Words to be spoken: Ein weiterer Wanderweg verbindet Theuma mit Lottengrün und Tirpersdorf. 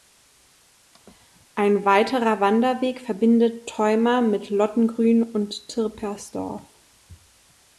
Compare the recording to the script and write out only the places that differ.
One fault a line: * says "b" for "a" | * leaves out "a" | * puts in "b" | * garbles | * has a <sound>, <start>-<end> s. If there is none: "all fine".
all fine